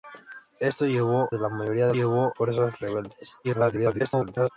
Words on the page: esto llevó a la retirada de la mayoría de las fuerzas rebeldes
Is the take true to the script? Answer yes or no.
no